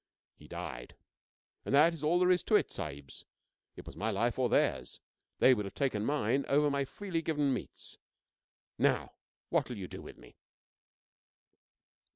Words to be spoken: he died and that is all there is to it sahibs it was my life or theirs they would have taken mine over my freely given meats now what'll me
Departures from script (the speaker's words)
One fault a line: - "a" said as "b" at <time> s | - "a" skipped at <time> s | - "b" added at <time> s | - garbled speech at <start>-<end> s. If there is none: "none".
- "you do with" added at 9.8 s